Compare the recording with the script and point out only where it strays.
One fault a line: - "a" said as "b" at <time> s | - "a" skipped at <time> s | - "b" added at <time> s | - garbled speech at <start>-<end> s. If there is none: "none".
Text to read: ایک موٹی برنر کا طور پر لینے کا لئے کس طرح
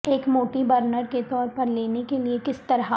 - "کا" said as "کے" at 1.1 s
- "کا" said as "کے" at 2.1 s